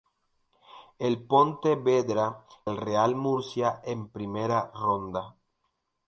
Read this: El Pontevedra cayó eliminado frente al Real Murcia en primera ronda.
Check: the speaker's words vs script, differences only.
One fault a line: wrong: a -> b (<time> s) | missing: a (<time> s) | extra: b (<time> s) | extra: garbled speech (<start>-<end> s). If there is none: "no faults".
missing: cayó eliminado frente (2.4 s)